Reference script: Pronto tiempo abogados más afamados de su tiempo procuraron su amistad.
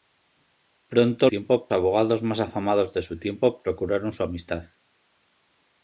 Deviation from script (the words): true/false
false